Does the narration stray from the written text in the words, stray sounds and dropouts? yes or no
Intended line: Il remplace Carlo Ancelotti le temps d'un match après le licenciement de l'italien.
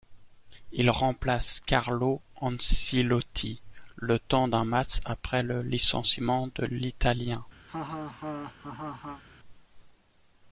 yes